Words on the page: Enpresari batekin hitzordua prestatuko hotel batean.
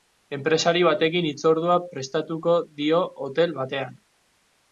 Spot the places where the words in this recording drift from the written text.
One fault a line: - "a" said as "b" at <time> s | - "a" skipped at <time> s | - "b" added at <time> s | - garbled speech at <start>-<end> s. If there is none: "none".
- "dio" added at 2.8 s